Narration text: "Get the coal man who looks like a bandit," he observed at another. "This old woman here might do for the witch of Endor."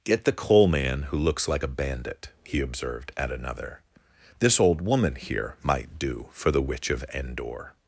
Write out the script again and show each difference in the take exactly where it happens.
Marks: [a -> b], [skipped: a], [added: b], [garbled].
"Get the coal man who looks like a bandit," he observed at another. "This old woman here might do for the witch of Endor."